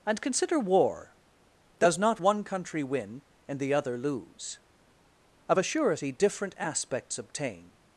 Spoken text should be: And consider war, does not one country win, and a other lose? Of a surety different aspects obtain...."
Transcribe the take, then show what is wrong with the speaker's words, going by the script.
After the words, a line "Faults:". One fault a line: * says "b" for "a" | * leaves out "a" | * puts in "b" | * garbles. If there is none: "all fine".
And consider war, does not one country win, and the other lose? Of a surety different aspects obtain...."
Faults:
* says "the" for "a"